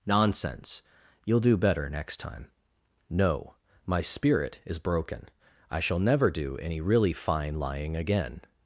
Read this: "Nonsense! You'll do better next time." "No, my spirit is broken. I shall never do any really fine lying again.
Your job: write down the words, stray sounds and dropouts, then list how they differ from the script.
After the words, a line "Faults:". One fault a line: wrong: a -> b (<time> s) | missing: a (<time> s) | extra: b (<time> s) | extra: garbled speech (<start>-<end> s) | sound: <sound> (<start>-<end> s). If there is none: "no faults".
"Nonsense! You'll do better next time." "No, my spirit is broken. I shall never do any really fine lying again.
Faults:
no faults